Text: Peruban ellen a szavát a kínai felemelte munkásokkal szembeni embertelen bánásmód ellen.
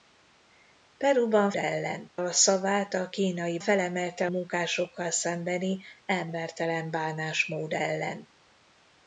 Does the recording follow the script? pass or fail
pass